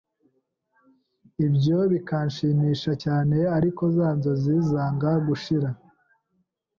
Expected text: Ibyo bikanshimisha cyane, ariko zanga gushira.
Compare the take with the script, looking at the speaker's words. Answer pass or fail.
fail